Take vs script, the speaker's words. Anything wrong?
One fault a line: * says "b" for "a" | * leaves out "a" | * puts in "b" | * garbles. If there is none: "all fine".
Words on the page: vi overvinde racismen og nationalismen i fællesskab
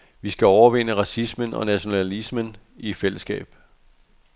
* puts in "skal"